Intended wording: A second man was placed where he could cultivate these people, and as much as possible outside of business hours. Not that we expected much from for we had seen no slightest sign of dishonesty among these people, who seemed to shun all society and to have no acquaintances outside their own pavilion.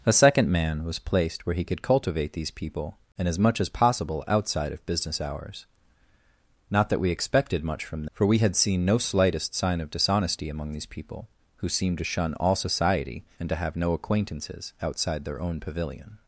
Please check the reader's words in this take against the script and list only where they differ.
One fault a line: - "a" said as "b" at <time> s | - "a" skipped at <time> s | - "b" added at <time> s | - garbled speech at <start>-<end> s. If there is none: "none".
none